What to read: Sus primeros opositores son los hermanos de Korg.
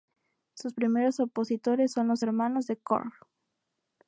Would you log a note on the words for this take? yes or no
no